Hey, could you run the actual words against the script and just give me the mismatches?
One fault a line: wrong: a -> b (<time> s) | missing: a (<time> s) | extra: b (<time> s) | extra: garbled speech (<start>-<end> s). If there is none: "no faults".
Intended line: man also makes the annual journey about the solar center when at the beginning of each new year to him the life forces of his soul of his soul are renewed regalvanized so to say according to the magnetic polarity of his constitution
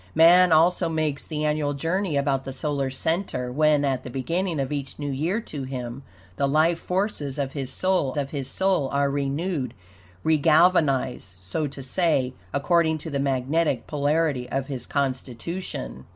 no faults